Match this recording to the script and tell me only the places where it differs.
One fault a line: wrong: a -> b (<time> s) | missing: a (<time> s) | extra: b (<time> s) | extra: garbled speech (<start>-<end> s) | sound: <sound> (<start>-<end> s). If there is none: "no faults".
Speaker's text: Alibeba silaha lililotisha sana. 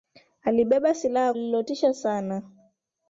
no faults